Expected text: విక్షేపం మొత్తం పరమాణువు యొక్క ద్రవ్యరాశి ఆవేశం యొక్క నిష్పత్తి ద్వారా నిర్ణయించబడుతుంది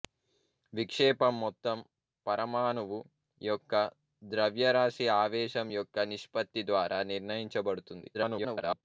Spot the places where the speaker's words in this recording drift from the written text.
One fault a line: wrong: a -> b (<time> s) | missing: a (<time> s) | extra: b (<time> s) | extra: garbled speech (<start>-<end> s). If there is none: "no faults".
extra: garbled speech (8.1-8.8 s)